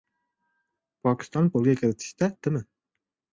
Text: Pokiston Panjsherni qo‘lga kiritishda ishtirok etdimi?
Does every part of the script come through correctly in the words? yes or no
no